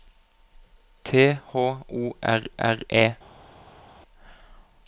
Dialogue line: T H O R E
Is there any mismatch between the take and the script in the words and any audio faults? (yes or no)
yes